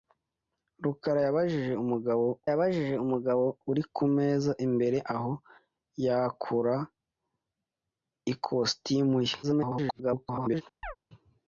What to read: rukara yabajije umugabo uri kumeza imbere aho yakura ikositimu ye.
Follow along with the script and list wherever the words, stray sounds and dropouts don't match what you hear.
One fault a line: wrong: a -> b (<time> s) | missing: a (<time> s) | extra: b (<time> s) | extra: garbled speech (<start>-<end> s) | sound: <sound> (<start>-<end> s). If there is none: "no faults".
extra: yabajije umugabo (2.5 s)
extra: garbled speech (9.4-10.6 s)
sound: chirp (10.8-11.0 s)